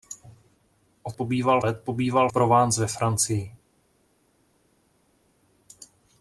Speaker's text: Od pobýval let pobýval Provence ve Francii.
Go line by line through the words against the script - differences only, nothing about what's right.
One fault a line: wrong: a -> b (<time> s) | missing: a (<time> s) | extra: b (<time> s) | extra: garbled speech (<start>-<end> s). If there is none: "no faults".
no faults